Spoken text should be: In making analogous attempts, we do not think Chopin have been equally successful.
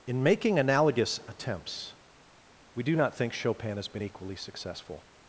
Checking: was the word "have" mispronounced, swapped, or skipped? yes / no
yes